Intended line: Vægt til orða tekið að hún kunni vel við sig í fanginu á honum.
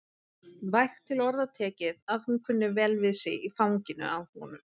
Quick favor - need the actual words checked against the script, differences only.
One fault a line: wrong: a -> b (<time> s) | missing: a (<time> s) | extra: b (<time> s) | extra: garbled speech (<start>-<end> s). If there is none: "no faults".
no faults